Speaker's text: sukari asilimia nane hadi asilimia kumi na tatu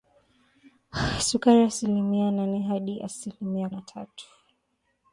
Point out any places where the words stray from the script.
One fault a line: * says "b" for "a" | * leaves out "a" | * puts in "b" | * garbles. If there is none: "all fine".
* leaves out "kumi"